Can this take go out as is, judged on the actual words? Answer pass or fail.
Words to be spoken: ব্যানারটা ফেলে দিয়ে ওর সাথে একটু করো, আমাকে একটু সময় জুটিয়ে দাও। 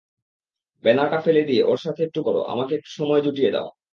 pass